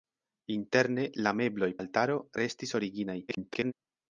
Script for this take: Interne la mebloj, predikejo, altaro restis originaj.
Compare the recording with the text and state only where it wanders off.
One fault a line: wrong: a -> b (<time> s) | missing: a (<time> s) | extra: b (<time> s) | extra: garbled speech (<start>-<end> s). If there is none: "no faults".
missing: predikejo (1.7 s)
extra: garbled speech (3.3-3.7 s)